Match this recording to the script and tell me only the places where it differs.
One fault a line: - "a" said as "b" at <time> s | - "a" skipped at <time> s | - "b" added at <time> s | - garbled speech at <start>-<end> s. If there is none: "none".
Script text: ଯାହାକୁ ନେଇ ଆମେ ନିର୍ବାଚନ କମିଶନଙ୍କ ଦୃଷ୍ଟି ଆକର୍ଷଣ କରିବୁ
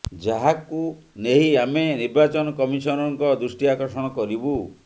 none